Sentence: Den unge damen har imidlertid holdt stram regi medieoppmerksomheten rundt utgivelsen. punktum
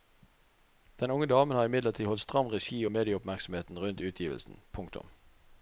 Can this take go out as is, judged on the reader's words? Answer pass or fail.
pass